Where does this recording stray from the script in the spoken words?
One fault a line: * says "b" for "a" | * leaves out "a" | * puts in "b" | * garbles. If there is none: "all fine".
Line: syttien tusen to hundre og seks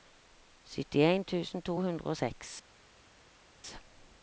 all fine